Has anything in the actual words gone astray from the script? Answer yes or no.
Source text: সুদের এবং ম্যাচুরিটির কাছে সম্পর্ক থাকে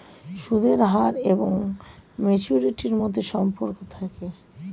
yes